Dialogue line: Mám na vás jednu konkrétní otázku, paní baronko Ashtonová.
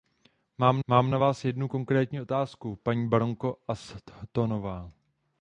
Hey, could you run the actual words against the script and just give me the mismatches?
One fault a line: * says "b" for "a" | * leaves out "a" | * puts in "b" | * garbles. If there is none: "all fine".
* puts in "mám"